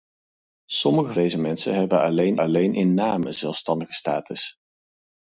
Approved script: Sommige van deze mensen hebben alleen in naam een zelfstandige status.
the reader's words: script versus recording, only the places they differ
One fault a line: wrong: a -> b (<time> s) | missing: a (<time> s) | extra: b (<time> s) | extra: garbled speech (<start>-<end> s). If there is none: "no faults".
missing: van (1.1 s)
extra: alleen (2.4 s)